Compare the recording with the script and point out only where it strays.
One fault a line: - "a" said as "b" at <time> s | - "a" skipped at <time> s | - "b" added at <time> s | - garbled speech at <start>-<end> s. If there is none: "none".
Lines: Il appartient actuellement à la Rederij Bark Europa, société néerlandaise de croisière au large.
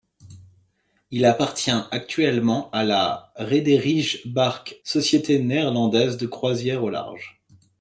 - "Europa" skipped at 4.8 s